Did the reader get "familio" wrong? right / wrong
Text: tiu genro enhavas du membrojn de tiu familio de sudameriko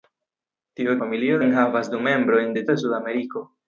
wrong